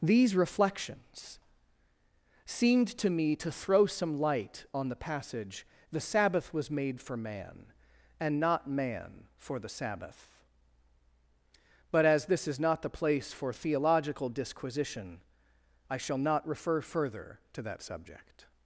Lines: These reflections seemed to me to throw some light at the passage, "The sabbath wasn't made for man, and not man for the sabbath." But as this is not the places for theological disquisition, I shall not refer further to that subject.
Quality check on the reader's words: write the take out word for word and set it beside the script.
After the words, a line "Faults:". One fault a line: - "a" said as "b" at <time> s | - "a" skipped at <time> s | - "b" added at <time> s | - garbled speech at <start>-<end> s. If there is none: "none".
These reflections seemed to me to throw some light on the passage, "The sabbath was made for man, and not man for the sabbath." But as this is not the place for theological disquisition, I shall not refer further to that subject.
Faults:
- "at" said as "on" at 4.7 s
- "wasn't" said as "was" at 6.5 s
- "places" said as "place" at 12.9 s